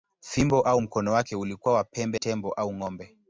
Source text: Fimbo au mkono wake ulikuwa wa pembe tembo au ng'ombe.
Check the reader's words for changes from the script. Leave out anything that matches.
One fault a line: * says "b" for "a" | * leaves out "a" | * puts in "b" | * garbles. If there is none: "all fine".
all fine